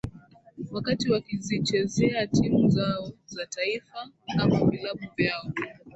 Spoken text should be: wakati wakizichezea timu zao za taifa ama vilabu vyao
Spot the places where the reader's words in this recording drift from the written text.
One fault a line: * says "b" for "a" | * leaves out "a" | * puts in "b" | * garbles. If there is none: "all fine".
all fine